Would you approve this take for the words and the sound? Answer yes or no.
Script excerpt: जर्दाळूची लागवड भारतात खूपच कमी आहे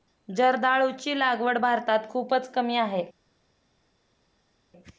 yes